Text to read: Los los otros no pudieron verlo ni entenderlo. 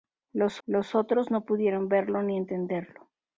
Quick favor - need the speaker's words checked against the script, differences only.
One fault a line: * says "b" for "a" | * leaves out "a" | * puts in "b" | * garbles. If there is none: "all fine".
all fine